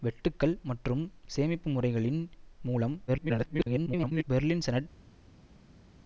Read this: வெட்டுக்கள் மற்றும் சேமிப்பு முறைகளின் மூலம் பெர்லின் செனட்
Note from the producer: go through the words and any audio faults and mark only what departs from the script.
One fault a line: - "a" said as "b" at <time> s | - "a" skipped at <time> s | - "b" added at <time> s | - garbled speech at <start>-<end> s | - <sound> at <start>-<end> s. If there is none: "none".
- garbled speech at 3.1-4.2 s